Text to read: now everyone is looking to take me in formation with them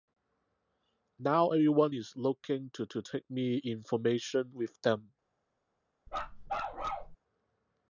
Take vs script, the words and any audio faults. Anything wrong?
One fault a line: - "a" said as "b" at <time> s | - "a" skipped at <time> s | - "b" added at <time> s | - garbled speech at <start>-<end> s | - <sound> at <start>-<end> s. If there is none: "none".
- "to" added at 2.9 s
- bark at 6.1-7.2 s